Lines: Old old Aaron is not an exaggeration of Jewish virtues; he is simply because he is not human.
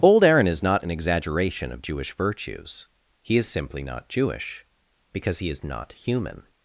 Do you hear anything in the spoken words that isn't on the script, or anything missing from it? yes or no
yes